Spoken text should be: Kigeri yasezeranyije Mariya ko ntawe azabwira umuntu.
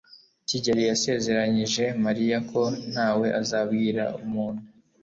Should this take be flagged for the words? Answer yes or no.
no